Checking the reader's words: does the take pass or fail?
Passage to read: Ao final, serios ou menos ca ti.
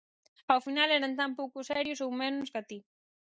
fail